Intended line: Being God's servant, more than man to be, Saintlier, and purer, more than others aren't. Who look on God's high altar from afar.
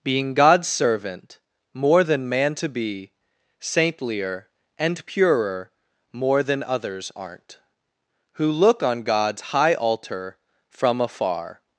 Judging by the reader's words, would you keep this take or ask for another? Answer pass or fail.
pass